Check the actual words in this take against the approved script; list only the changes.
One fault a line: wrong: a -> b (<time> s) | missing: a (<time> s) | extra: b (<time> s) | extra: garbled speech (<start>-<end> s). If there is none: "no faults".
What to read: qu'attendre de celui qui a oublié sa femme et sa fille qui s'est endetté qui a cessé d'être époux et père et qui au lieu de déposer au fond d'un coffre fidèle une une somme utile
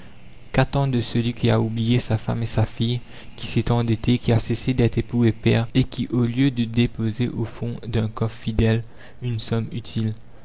missing: une (9.4 s)